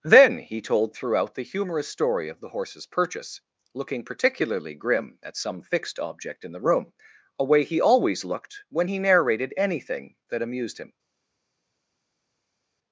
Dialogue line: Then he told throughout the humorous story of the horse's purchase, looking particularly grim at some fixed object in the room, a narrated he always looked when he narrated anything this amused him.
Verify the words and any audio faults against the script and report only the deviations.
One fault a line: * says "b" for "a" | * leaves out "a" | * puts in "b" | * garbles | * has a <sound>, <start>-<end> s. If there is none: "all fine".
* says "way" for "narrated"
* says "that" for "this"